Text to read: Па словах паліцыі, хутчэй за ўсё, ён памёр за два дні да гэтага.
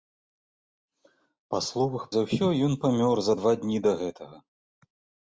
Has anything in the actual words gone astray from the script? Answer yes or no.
yes